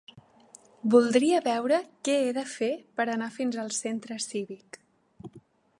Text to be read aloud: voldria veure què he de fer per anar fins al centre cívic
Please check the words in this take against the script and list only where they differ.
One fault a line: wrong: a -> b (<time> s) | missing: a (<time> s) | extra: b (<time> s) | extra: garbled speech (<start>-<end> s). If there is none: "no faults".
no faults